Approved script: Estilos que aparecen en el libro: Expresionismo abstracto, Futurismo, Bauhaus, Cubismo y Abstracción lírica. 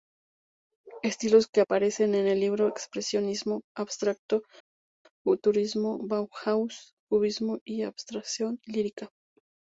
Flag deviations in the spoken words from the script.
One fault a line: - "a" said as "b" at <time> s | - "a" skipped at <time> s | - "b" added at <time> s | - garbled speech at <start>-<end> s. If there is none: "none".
none